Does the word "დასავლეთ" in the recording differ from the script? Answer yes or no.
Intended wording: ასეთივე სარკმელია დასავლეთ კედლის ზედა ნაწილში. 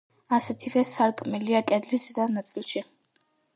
yes